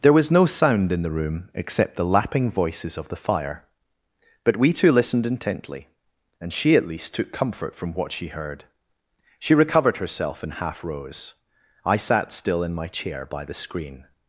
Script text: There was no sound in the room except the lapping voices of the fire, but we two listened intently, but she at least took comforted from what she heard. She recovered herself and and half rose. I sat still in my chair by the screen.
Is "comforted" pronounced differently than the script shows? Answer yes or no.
yes